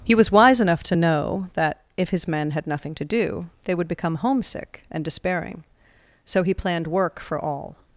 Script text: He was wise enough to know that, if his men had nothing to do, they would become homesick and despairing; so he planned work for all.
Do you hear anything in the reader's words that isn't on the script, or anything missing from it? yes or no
no